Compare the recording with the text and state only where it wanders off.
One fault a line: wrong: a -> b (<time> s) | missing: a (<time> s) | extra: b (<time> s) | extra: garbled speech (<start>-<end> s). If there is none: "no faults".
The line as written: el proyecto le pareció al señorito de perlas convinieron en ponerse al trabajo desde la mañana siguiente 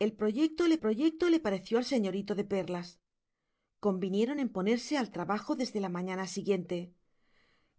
extra: proyecto le (0.8 s)